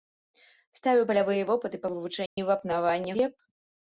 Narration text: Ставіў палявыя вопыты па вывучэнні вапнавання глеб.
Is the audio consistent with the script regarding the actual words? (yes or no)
yes